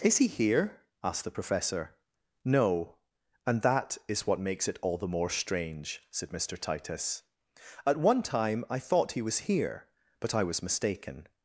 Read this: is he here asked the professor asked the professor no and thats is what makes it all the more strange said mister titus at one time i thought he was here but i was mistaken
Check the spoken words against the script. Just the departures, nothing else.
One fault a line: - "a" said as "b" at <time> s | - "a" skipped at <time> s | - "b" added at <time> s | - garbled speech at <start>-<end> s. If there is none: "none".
- "asked the professor" skipped at 1.9 s
- "thats" said as "that" at 3.6 s